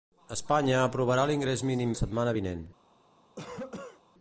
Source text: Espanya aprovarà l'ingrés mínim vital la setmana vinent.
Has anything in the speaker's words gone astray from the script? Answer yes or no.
yes